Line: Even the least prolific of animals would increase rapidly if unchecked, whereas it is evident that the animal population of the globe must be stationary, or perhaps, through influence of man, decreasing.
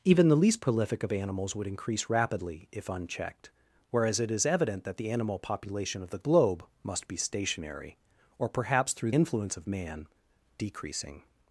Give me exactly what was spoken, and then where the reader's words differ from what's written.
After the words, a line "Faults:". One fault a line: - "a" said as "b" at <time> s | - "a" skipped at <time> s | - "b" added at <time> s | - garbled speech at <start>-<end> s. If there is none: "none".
Even the least prolific of animals would increase rapidly if unchecked, whereas it is evident that the animal population of the globe must be stationary, or perhaps, through influence of man, decreasing.
Faults:
none